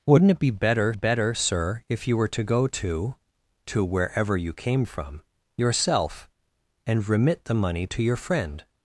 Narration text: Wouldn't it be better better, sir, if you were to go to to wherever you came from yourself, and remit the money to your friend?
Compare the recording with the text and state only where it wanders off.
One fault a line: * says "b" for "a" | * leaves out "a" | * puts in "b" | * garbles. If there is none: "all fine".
all fine